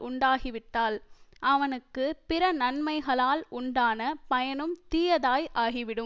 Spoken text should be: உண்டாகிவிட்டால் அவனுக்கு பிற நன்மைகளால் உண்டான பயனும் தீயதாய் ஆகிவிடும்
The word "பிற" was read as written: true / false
true